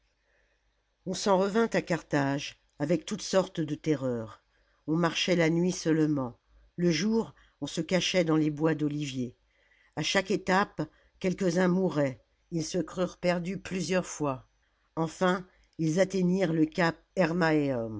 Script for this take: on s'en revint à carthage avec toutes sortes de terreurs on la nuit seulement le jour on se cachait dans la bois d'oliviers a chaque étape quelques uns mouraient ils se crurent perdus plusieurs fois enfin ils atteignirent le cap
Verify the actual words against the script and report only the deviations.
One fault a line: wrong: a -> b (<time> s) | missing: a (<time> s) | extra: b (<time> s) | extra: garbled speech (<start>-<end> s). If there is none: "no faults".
extra: marchait (5.0 s)
wrong: la -> les (8.4 s)